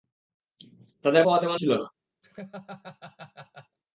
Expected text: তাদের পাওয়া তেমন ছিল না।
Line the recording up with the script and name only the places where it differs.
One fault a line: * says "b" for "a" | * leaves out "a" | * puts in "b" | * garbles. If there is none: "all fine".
all fine